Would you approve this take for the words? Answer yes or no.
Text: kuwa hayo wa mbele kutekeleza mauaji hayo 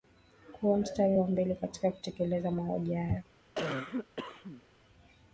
no